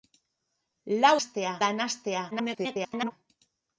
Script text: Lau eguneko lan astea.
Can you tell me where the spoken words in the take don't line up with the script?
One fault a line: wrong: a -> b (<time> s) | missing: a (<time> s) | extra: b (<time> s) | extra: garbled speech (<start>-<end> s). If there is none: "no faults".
wrong: eguneko -> astea (1.2 s)
extra: garbled speech (2.3-3.1 s)